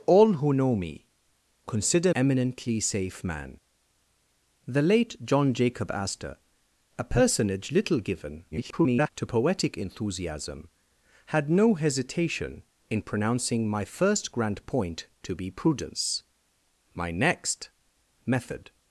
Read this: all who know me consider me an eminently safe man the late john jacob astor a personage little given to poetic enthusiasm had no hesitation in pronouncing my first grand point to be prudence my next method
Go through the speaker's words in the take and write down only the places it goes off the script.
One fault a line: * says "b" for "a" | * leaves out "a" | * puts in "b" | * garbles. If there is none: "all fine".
* leaves out "me an"
* garbles